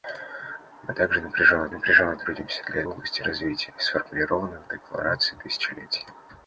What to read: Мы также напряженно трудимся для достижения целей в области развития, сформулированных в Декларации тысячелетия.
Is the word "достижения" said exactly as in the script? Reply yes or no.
no